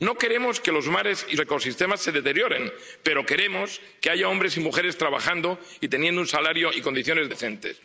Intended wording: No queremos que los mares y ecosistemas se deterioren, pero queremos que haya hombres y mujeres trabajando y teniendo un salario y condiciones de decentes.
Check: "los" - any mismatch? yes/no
no